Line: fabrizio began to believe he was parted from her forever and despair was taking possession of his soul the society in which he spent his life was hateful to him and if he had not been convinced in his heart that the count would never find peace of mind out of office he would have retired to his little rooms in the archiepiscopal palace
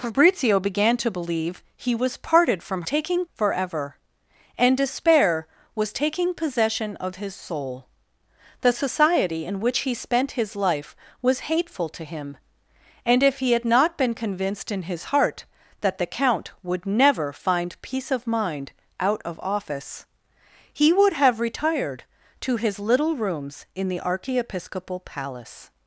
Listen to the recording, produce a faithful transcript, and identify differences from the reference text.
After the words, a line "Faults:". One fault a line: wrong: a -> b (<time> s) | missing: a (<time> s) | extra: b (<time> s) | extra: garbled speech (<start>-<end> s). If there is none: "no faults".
fabrizio began to believe he was parted from taking forever and despair was taking possession of his soul the society in which he spent his life was hateful to him and if he had not been convinced in his heart that the count would never find peace of mind out of office he would have retired to his little rooms in the archiepiscopal palace
Faults:
wrong: her -> taking (2.8 s)